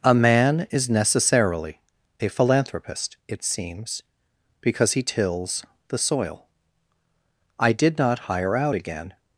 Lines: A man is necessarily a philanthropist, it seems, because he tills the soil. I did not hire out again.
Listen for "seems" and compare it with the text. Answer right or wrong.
right